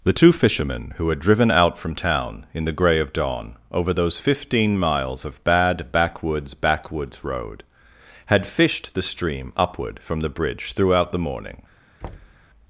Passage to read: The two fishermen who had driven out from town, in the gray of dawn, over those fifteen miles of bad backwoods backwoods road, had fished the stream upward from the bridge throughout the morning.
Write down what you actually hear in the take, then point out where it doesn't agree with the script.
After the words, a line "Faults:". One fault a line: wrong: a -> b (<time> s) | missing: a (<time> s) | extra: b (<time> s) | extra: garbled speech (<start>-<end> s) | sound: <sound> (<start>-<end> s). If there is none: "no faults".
The two fishermen who had driven out from town, in the gray of dawn, over those fifteen miles of bad backwoods backwoods road, had fished the stream upward from the bridge throughout the morning.
Faults:
sound: thud (12.0-12.5 s)